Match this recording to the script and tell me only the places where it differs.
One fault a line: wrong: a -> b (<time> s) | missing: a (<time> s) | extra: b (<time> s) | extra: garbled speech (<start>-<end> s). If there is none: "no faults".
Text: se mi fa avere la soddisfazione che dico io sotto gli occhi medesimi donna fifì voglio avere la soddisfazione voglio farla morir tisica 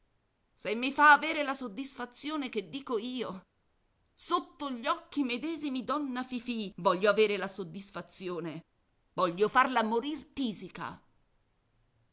no faults